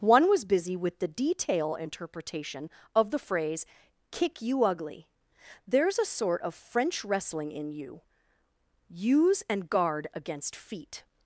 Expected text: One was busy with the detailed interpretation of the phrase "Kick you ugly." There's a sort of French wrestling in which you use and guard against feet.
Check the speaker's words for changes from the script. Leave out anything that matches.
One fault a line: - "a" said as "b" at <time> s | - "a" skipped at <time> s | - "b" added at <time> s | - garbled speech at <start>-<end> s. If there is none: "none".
- "detailed" said as "detail" at 1.1 s
- "which" skipped at 7.7 s